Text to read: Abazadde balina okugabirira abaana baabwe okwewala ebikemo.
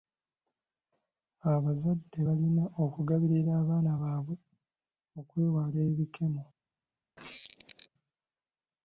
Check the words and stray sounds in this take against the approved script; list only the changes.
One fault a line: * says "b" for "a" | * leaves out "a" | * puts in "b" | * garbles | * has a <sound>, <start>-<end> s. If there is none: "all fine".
* has a squeak, 7.2-7.9 s